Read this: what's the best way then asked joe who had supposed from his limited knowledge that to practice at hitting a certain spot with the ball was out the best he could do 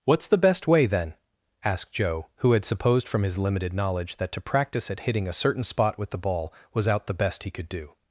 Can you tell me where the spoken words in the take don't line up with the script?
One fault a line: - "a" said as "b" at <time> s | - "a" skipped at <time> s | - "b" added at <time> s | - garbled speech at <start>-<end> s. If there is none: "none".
none